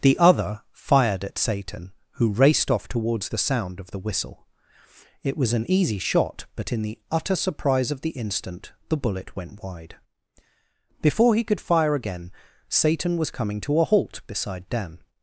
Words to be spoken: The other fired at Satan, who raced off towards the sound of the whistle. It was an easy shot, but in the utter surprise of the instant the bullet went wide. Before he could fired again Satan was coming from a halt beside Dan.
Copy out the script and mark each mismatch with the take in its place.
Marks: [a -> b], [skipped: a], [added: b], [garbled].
The other fired at Satan, who raced off towards the sound of the whistle. It was an easy shot, but in the utter surprise of the instant the bullet went wide. Before he could [fired -> fire] again Satan was coming [from -> to] a halt beside Dan.